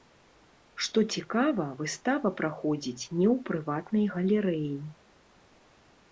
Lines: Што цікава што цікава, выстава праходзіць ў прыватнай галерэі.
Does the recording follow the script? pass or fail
fail